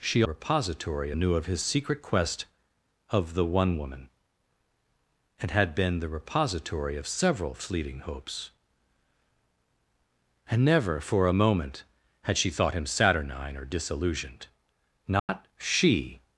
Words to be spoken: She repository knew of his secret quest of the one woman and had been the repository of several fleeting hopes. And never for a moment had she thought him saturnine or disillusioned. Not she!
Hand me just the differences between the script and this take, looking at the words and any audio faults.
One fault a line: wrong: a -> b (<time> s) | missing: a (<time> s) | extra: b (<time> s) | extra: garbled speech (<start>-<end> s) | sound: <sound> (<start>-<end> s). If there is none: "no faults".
sound: dropout (15.2-15.3 s)